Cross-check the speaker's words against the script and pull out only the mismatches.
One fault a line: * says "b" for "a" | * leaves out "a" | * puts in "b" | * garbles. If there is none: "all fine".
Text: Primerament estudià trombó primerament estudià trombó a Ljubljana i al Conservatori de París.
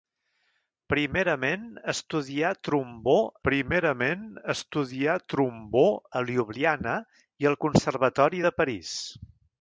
all fine